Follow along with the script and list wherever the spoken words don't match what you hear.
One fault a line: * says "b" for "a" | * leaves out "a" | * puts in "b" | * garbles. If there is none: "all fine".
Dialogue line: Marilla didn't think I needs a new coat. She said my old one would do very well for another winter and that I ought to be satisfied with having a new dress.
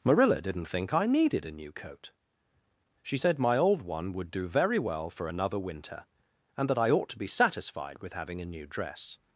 * says "needed" for "needs"